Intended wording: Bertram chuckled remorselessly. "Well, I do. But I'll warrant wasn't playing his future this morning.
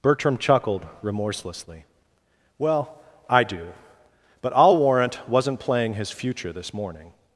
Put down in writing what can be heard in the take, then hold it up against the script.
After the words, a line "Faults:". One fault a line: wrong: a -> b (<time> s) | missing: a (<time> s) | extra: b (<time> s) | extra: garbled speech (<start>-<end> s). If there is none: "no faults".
Bertram chuckled remorselessly. "Well, I do. But I'll warrant wasn't playing his future this morning.
Faults:
no faults